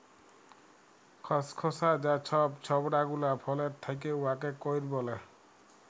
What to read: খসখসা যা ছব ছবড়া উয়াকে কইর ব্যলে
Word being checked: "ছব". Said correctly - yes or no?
yes